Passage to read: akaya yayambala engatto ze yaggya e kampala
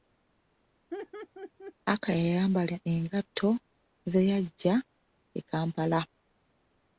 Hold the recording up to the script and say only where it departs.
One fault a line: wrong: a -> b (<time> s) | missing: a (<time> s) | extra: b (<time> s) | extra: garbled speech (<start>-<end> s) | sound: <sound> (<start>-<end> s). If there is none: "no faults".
sound: laugh (0.9-1.7 s)